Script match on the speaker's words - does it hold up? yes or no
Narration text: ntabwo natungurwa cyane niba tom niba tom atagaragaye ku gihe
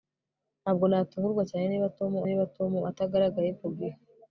yes